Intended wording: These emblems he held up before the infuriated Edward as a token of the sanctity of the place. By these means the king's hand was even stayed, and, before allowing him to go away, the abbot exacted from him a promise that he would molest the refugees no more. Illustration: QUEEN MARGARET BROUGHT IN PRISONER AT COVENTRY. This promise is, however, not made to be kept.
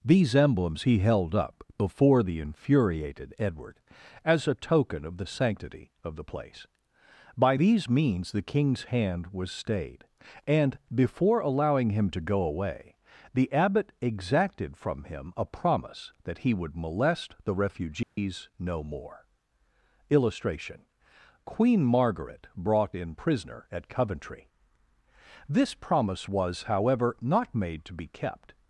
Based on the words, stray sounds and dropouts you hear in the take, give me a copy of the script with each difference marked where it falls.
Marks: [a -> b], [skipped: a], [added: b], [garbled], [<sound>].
These emblems he held up before the infuriated Edward as a token of the sanctity of the place. By these means the king's hand was [skipped: even] stayed, and, before allowing him to go away, the abbot exacted from him a promise that he would molest the refugees [dropout] no more. Illustration: QUEEN MARGARET BROUGHT IN PRISONER AT COVENTRY. This promise [is, -> was] however, not made to be kept.